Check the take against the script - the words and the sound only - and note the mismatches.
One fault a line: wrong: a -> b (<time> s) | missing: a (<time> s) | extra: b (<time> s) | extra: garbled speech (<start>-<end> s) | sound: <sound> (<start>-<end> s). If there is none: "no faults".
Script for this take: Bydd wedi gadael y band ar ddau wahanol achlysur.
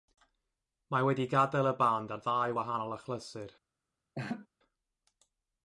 wrong: Bydd -> Mae (0.9 s)
sound: laugh (4.1-4.5 s)